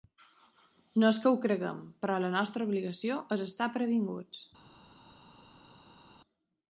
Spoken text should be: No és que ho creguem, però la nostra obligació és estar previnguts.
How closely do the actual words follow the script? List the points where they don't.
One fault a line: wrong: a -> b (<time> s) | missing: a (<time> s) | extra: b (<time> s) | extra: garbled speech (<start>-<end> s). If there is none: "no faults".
no faults